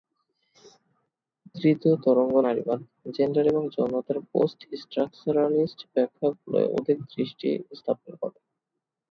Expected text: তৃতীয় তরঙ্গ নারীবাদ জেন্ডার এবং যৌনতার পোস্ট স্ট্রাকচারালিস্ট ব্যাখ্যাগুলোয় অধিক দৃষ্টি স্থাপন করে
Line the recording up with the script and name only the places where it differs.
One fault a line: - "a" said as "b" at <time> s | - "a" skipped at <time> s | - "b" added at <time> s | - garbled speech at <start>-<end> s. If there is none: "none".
none